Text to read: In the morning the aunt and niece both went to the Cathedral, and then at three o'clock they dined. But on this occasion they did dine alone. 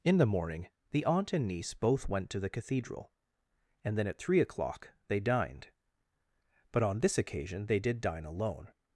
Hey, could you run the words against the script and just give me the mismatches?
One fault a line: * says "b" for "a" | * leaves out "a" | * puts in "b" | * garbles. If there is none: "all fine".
all fine